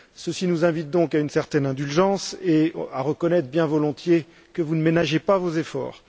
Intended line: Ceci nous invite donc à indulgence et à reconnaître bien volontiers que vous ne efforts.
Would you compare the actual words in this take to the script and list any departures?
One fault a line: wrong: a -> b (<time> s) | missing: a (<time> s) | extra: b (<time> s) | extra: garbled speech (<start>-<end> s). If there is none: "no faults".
extra: une certaine (1.2 s)
extra: ménagez pas vos (4.8 s)